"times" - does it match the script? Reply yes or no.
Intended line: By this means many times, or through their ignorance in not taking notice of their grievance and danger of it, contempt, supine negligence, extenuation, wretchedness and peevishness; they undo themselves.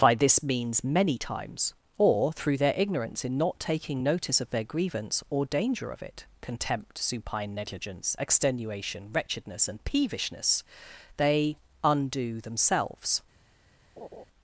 yes